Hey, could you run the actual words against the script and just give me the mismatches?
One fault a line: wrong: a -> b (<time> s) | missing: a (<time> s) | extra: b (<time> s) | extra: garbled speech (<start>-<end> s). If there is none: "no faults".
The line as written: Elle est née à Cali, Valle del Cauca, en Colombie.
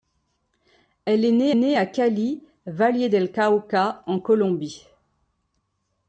extra: née (1.5 s)